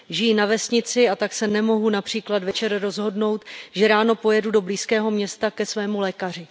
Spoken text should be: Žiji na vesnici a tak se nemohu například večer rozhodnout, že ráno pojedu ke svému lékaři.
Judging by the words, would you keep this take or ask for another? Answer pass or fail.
fail